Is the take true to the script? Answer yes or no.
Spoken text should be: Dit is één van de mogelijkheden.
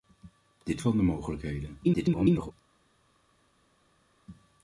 no